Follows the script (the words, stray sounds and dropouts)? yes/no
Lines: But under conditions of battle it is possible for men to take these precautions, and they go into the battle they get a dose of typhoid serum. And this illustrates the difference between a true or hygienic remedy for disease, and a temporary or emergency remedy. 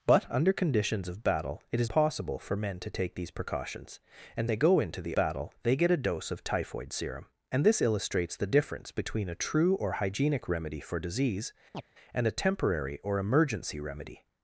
no